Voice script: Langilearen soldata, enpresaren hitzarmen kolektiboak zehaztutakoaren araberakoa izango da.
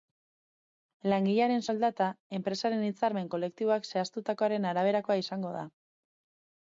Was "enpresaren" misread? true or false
false